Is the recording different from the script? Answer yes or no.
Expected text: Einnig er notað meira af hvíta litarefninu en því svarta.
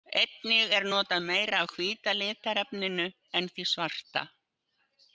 no